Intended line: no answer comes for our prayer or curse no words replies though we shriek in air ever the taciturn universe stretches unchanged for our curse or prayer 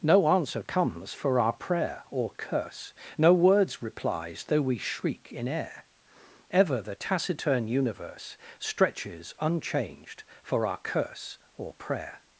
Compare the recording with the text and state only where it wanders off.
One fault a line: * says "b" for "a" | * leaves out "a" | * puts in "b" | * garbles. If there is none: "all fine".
all fine